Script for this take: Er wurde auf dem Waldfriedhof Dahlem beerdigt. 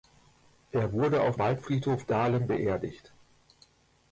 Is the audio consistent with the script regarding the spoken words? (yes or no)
no